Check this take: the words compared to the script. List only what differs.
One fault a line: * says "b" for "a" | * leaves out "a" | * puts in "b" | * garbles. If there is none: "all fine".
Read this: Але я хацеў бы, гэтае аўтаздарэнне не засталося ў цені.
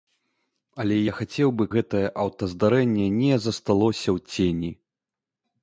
all fine